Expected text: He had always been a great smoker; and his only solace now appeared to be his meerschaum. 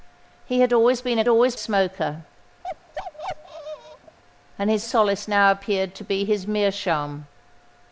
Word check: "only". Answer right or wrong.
wrong